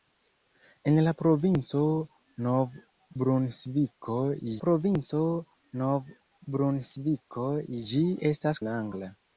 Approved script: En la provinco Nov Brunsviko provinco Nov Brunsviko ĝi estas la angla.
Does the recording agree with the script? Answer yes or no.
yes